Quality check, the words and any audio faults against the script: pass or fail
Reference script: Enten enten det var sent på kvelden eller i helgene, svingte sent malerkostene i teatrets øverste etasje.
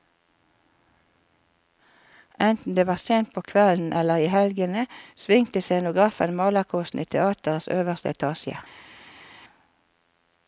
fail